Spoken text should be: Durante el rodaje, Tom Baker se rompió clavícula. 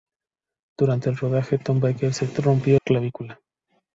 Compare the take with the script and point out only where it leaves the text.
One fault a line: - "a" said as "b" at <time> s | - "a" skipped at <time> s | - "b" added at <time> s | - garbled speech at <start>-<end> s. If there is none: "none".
none